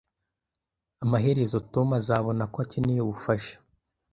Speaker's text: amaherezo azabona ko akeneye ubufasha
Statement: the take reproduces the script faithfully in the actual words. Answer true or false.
false